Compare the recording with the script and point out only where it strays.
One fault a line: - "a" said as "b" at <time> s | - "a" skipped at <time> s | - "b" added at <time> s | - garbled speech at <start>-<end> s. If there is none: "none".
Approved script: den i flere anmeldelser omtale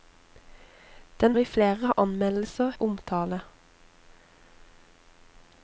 none